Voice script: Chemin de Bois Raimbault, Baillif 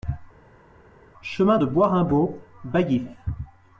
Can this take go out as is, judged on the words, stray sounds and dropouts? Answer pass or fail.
pass